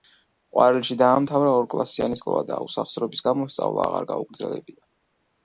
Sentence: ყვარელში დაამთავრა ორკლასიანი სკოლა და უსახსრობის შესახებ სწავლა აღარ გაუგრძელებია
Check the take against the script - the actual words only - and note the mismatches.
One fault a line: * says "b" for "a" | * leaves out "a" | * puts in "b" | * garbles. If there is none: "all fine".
* says "გამო" for "შესახებ"